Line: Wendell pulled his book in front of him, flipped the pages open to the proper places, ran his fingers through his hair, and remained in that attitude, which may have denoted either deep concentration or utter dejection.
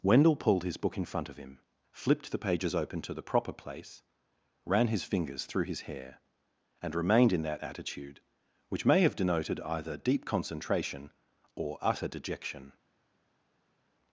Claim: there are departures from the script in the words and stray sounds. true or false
true